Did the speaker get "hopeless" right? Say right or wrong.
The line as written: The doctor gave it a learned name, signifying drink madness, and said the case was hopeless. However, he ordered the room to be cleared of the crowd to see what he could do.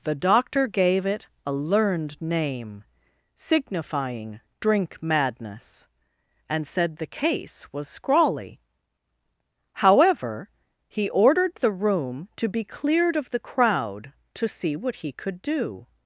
wrong